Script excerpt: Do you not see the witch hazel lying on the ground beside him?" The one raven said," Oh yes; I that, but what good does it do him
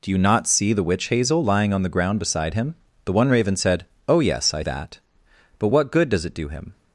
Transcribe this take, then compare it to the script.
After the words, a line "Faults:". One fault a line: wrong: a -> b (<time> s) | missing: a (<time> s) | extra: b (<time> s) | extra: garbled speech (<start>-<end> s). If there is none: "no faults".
Do you not see the witch hazel lying on the ground beside him?" The one raven said," Oh yes; I that, but what good does it do him
Faults:
no faults